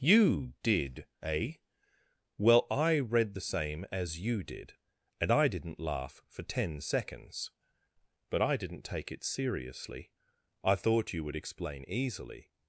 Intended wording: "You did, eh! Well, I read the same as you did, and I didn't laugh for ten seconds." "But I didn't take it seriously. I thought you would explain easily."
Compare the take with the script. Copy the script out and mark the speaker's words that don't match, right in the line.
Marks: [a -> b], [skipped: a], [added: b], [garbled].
"You did, eh! Well, I read the same as you did, and I didn't laugh for ten seconds." "But I didn't take it seriously. I thought you would explain easily."